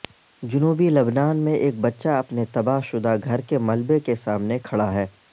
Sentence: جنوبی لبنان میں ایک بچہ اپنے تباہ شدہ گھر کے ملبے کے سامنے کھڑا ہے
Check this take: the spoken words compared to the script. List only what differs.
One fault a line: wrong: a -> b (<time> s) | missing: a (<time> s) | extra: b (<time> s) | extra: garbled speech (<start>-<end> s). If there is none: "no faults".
no faults